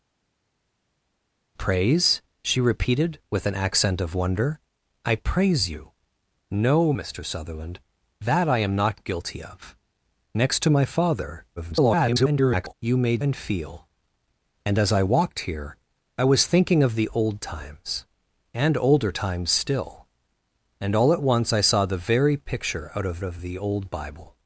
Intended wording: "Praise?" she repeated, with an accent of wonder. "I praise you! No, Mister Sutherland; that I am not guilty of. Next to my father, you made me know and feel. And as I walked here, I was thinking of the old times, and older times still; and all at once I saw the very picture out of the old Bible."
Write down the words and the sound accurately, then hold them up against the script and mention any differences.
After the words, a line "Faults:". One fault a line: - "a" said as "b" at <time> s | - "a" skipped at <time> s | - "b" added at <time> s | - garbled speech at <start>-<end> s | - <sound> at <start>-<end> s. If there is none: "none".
"Praise?" she repeated, with an accent of wonder. "I praise you! No, Mister Sutherland; that I am not guilty of. Next to my father, [garbled] you made and feel. And as I walked here, I was thinking of the old times, and older times still; and all at once I saw the very picture out of of the old Bible."
Faults:
- garbled speech at 11.6-12.7 s
- "me know" skipped at 13.2 s
- "of" added at 23.2 s